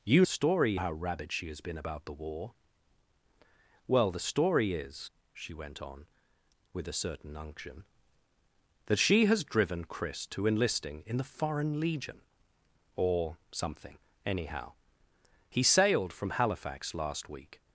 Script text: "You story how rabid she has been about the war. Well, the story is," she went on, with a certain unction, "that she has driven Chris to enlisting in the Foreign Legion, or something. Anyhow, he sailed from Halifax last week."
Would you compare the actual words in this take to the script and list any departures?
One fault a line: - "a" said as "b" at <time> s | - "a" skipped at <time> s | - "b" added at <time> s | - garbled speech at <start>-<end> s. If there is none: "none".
none